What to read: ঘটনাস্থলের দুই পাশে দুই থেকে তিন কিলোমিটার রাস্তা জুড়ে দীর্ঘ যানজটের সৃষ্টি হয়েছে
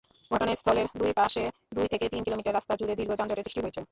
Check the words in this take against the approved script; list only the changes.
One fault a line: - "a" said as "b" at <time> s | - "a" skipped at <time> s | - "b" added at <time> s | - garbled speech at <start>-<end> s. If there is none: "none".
none